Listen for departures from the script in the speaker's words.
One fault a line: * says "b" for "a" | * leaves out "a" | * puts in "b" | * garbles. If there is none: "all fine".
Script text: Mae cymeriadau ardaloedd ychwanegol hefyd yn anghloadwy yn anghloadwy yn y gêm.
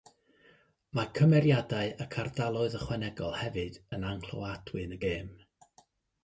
* puts in "ac"
* leaves out "anghloadwy yn"